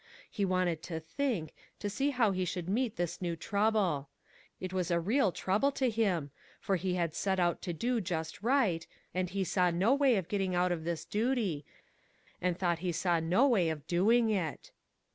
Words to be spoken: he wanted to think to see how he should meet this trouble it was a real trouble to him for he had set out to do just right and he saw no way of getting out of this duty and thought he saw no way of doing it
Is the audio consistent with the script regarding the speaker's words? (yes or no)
no